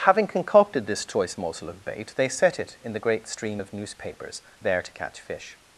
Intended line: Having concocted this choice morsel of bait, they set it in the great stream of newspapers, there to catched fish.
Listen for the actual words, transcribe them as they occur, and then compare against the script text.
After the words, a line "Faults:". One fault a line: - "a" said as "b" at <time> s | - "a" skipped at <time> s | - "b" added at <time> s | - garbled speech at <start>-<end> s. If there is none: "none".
Having concocted this choice morsel of bait, they set it in the great stream of newspapers, there to catch fish.
Faults:
- "catched" said as "catch" at 4.9 s